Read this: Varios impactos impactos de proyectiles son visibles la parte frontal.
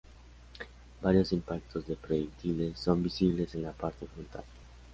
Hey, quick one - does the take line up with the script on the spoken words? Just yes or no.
no